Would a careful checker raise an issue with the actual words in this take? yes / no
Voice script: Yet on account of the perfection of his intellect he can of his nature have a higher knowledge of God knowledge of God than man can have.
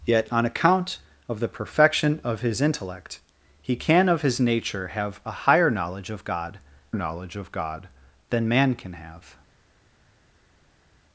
no